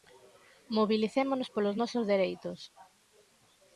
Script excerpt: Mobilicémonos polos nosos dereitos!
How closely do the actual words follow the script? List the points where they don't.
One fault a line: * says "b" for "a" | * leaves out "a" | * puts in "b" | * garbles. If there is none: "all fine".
all fine